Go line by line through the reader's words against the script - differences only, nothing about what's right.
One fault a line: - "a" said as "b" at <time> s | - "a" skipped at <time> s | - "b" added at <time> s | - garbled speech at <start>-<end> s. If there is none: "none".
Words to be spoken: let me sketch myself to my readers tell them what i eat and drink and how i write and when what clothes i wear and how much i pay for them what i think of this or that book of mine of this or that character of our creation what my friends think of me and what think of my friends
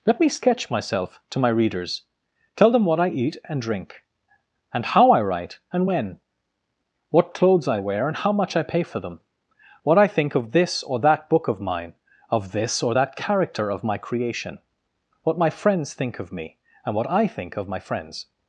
- "our" said as "my" at 13.8 s
- "i" added at 17.1 s